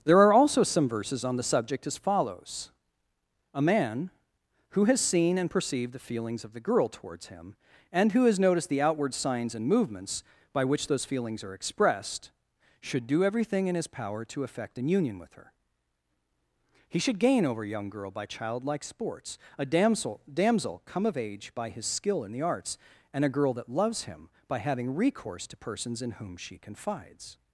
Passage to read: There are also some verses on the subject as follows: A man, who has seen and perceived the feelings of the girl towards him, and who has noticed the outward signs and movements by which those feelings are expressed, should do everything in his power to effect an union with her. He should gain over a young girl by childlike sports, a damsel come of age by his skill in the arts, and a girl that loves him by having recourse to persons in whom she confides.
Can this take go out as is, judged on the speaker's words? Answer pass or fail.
fail